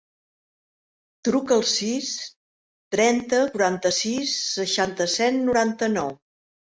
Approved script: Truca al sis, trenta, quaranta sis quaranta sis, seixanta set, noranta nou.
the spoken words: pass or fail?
fail